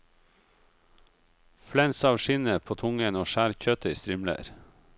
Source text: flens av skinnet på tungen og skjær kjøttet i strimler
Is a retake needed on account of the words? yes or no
no